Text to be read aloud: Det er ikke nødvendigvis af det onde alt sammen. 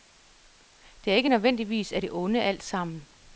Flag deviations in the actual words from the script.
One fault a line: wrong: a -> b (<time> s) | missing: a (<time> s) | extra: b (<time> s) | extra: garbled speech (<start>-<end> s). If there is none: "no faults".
no faults